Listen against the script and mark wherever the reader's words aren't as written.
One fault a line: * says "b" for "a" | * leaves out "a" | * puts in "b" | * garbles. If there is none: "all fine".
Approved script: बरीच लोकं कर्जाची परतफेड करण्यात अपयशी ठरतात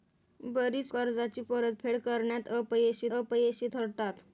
* leaves out "लोकं"
* puts in "अपयशी"